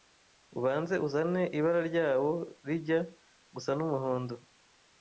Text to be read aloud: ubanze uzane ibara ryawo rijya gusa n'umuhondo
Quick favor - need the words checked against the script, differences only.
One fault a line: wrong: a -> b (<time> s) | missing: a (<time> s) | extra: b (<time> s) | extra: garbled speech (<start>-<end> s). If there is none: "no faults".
no faults